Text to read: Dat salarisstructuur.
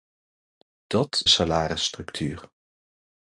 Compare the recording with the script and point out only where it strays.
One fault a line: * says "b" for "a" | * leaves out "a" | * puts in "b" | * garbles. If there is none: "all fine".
all fine